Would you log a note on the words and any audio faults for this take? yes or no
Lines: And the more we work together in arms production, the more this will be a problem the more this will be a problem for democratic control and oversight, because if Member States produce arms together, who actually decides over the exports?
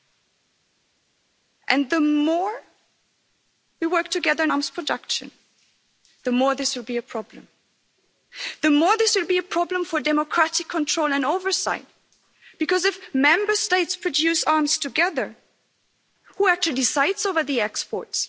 no